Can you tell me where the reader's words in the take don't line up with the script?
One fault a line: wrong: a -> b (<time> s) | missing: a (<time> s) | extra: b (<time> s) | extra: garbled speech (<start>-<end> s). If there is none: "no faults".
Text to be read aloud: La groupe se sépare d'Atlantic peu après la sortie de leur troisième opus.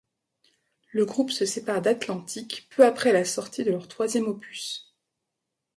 wrong: La -> Le (0.9 s)